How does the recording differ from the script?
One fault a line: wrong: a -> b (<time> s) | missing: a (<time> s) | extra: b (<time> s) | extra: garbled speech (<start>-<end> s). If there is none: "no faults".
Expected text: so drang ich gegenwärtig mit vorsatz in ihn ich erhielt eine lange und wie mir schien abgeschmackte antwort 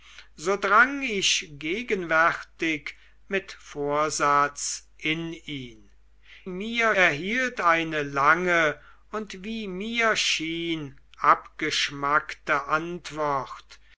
wrong: ich -> mir (6.5 s)